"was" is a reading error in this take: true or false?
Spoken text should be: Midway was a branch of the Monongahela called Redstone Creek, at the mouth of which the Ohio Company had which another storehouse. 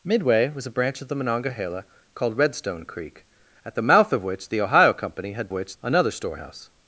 false